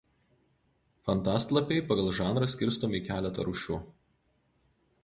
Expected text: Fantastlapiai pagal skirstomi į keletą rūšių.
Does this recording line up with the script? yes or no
no